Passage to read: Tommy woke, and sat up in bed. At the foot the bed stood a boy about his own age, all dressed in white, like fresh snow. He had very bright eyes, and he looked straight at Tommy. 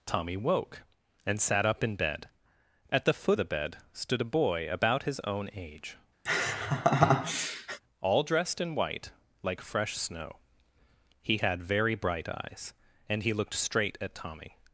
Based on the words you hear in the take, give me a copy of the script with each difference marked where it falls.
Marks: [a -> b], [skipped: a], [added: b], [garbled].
Tommy woke, and sat up in bed. At the foot the bed stood a boy about his own age, all dressed in white, like fresh snow. He had very bright eyes, and he looked straight at Tommy.